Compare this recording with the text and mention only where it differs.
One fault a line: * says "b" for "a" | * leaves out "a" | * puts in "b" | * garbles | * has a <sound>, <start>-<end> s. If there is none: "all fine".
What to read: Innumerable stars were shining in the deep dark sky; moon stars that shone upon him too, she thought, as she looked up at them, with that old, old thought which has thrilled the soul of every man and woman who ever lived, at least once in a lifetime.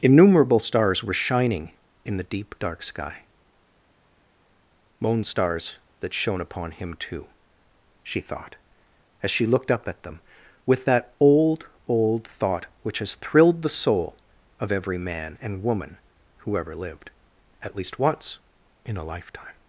all fine